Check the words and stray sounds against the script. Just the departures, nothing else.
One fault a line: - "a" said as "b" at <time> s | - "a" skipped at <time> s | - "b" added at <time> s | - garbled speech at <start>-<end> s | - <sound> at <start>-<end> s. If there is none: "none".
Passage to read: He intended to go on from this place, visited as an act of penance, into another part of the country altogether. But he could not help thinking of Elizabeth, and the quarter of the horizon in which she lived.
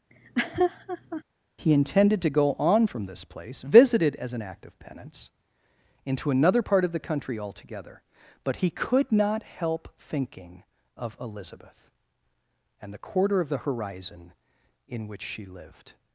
- laugh at 0.1-1.2 s